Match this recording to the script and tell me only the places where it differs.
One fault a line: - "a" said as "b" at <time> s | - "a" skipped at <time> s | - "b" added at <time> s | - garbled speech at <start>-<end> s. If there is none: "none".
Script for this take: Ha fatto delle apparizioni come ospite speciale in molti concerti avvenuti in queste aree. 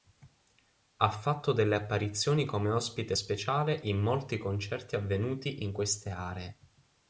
none